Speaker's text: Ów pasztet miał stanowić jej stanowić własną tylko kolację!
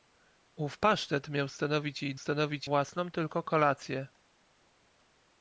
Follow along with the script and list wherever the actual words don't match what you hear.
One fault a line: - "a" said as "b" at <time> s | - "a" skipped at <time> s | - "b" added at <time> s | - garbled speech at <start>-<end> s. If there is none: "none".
none